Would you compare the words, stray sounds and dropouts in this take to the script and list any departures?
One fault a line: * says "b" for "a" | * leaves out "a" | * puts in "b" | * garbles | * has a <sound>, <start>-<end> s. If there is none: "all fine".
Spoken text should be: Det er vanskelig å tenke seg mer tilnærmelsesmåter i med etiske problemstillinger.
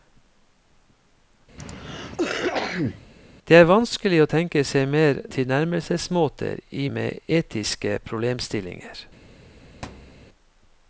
* has a cough, 1.6-3.1 s
* has a thud, 9.8-10.2 s